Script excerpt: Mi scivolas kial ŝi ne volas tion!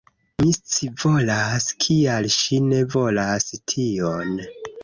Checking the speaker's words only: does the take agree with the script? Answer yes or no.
yes